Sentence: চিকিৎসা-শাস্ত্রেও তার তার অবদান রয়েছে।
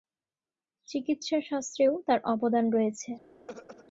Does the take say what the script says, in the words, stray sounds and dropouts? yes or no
no